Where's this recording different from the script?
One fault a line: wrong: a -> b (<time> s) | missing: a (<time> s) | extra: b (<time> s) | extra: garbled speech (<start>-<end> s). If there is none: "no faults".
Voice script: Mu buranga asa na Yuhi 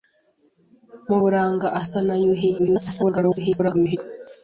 extra: garbled speech (2.6-4.0 s)